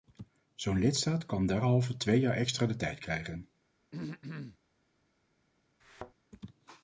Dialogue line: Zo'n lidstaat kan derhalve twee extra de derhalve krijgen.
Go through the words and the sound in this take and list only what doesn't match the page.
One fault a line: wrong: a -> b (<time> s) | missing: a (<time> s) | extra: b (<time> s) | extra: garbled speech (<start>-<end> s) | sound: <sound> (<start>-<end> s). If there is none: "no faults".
extra: jaar (2.2 s)
wrong: derhalve -> tijd (2.8 s)
sound: throat clearing (3.9-4.6 s)
sound: thud (5.8-6.1 s)